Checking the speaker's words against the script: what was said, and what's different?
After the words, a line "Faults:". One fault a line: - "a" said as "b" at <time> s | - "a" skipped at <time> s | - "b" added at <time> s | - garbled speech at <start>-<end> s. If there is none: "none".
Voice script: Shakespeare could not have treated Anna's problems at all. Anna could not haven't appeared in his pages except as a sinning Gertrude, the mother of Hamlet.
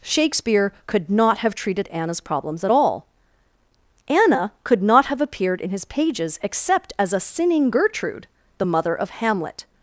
Shakespeare could not have treated Anna's problems at all. Anna could not have appeared in his pages except as a sinning Gertrude, the mother of Hamlet.
Faults:
- "haven't" said as "have" at 5.1 s